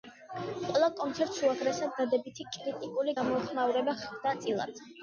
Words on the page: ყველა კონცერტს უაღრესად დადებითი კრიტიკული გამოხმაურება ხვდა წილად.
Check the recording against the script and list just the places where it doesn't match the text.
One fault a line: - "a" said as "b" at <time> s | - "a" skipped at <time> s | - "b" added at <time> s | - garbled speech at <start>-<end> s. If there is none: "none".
none